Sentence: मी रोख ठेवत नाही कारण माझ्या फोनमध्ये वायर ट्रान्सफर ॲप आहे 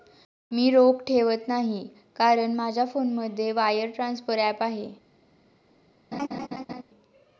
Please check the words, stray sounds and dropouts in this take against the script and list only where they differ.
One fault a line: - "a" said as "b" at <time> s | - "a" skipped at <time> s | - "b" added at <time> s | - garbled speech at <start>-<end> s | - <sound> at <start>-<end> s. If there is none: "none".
- laugh at 6.1-6.8 s